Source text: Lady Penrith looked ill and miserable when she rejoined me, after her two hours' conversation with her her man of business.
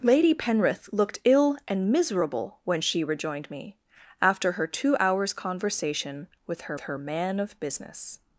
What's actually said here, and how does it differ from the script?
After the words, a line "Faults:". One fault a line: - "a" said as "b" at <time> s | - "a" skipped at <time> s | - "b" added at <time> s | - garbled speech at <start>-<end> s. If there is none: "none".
Lady Penrith looked ill and miserable when she rejoined me, after her two hours' conversation with her her man of business.
Faults:
none